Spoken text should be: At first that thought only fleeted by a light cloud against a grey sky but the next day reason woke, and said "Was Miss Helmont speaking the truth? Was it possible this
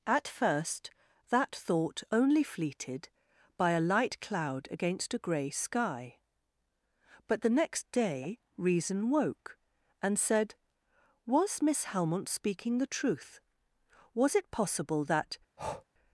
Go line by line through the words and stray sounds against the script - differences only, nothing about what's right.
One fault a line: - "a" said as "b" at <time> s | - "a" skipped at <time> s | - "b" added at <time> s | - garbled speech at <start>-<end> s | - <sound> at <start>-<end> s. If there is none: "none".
- "this" said as "that" at 15.0 s
- breath at 15.6-15.8 s